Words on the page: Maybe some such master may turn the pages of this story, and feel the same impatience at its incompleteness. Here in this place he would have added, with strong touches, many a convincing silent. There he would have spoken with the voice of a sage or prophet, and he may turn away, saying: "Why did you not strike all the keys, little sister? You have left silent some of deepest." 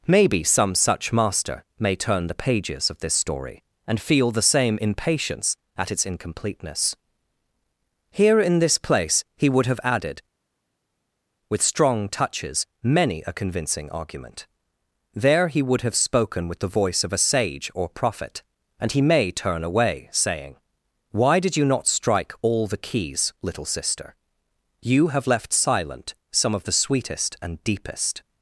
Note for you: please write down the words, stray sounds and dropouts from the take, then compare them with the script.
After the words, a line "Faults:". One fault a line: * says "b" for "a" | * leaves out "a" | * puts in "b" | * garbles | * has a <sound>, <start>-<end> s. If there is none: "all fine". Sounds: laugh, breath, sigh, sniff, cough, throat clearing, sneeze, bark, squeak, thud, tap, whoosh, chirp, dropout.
Maybe some such master may turn the pages of this story, and feel the same impatience at its incompleteness. Here in this place he would have added, with strong touches, many a convincing argument. There he would have spoken with the voice of a sage or prophet, and he may turn away, saying: "Why did you not strike all the keys, little sister? You have left silent some of the sweetest and deepest."
Faults:
* says "argument" for "silent"
* puts in "the sweetest and"